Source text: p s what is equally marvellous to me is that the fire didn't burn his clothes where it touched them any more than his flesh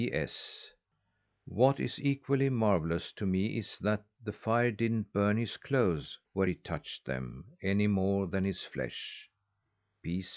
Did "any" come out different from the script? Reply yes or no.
no